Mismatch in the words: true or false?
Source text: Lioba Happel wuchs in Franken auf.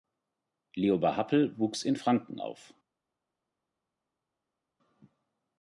false